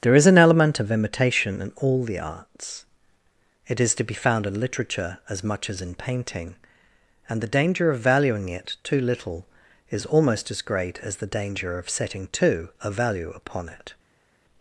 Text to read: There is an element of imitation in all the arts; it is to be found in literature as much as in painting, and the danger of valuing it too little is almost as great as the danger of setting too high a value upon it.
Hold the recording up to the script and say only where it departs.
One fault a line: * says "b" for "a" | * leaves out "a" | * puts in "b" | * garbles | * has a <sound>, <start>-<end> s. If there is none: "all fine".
* leaves out "high"